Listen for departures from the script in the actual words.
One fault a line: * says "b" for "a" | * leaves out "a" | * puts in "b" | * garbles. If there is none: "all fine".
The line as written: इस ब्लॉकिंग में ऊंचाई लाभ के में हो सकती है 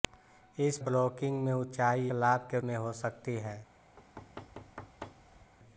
all fine